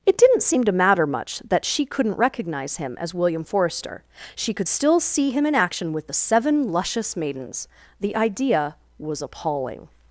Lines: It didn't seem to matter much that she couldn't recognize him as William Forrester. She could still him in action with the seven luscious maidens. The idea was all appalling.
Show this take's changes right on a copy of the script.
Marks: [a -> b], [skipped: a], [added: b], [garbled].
It didn't seem to matter much that she couldn't recognize him as William Forrester. She could still [added: see] him in action with the seven luscious maidens. The idea was [skipped: all] appalling.